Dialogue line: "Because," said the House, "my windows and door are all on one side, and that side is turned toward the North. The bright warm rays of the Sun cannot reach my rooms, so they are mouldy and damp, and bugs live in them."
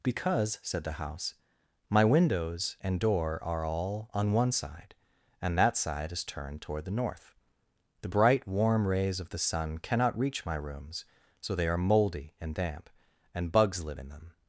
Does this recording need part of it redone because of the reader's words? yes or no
no